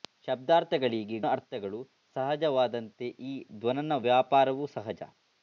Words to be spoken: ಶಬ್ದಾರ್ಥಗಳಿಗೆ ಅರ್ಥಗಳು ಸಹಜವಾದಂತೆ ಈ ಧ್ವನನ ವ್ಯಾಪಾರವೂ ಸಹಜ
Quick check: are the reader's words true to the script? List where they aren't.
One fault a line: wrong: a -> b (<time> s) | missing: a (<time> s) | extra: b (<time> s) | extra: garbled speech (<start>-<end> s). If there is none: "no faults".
no faults